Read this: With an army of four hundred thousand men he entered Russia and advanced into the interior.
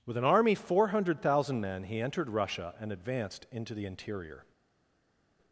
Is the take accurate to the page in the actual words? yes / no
no